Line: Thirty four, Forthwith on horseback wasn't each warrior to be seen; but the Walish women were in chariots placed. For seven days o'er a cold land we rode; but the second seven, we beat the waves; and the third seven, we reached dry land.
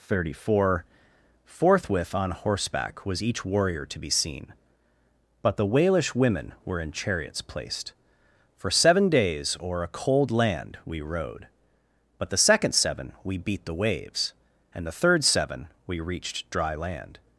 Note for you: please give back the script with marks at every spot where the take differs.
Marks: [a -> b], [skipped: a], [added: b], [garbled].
Thirty four, Forthwith on horseback [wasn't -> was] each warrior to be seen; but the Walish women were in chariots placed. For seven days o'er a cold land we rode; but the second seven, we beat the waves; and the third seven, we reached dry land.